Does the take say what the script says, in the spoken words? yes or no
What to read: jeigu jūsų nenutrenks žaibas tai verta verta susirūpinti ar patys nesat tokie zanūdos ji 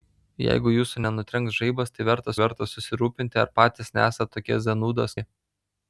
yes